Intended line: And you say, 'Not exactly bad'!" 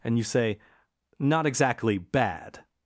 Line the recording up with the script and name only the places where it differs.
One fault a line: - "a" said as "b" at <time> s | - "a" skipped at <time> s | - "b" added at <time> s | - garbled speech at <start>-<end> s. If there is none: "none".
none